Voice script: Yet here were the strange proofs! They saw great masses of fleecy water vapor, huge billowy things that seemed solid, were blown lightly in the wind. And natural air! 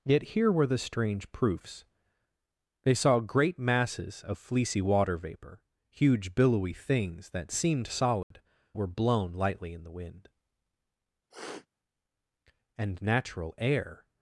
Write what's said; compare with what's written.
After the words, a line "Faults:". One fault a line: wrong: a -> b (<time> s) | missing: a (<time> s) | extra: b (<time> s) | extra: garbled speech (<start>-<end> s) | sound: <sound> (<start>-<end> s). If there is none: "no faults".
Yet here were the strange proofs! They saw great masses of fleecy water vapor, huge billowy things that seemed solid, were blown lightly in the wind. And natural air!
Faults:
sound: dropout (8.2-8.3 s)
sound: sniff (11.3-11.7 s)